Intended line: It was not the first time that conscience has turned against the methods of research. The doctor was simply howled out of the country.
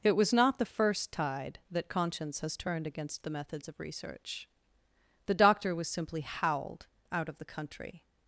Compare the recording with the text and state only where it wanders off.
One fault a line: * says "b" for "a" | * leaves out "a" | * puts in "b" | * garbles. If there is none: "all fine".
* says "tide" for "time"